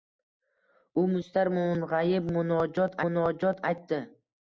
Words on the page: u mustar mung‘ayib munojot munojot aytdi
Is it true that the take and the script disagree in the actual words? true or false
false